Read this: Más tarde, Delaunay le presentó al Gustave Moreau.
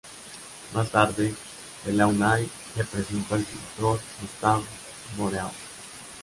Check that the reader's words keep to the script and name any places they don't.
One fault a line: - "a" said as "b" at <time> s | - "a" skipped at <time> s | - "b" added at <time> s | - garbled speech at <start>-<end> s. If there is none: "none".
- "pintor" added at 3.4 s